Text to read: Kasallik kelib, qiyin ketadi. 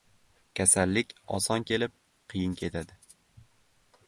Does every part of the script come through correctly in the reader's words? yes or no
no